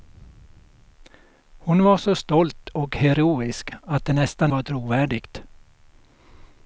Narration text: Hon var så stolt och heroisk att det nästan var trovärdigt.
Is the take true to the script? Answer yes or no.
yes